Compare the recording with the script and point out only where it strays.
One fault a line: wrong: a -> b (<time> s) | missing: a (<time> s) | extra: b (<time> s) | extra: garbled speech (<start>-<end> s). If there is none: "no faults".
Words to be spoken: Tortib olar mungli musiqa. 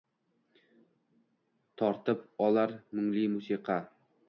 no faults